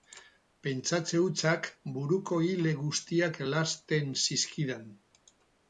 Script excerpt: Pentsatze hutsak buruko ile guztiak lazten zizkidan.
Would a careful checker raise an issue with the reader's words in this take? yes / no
no